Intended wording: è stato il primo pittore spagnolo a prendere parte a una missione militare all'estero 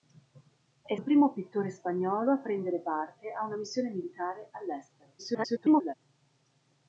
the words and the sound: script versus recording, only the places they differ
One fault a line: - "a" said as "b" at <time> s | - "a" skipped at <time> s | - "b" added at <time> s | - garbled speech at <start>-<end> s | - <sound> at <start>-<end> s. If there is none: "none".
- "stato" skipped at 0.9 s
- garbled speech at 5.2-5.9 s